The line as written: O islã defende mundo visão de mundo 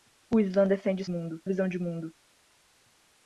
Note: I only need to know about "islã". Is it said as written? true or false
true